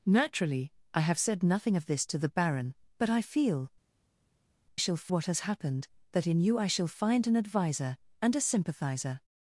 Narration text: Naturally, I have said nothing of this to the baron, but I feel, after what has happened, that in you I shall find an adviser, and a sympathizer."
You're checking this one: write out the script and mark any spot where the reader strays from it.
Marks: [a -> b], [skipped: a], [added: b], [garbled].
Naturally, I have said nothing of this to the baron, but I feel, [after -> shall] what has happened, that in you I shall find an adviser, and a sympathizer."